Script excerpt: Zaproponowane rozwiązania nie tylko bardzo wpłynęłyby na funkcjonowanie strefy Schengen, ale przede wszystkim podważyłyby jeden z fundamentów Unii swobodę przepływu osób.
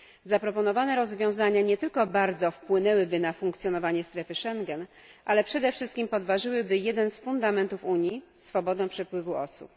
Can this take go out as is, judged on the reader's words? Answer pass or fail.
pass